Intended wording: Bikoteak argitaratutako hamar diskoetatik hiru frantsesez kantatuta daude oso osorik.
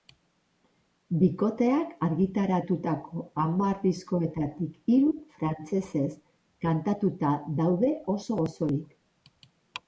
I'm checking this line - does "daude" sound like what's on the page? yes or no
yes